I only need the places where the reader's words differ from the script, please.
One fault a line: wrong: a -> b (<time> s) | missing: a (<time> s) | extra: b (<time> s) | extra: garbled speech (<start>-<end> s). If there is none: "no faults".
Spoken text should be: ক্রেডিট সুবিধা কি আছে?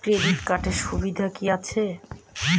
extra: কার্ডের (0.4 s)